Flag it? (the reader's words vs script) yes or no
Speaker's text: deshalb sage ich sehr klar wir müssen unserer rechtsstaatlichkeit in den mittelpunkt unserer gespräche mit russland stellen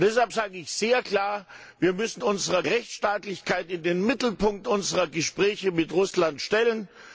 no